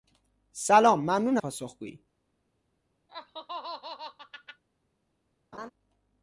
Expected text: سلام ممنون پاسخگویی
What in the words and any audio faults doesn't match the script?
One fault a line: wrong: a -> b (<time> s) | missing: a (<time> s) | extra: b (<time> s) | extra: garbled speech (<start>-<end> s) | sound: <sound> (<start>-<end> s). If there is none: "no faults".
sound: laugh (3.1-4.6 s)
sound: laugh (5.5-5.7 s)